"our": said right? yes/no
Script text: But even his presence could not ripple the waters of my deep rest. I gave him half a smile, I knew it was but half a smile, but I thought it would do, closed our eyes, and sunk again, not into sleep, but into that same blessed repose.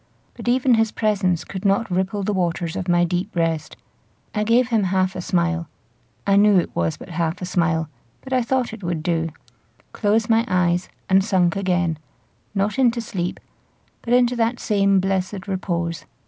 no